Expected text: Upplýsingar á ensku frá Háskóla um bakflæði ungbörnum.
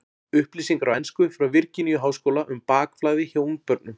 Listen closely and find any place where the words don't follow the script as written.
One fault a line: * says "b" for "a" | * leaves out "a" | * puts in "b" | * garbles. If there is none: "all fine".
* puts in "Virginíu"
* puts in "hjá"